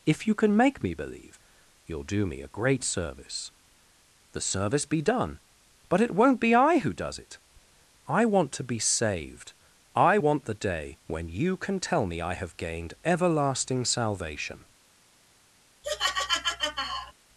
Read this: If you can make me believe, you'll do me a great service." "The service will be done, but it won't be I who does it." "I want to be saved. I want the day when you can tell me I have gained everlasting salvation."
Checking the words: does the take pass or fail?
fail